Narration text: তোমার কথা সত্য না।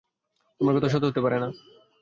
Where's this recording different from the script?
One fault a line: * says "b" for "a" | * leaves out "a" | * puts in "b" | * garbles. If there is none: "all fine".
* puts in "হতে পারে"